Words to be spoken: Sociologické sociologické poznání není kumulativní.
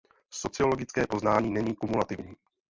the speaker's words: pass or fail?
fail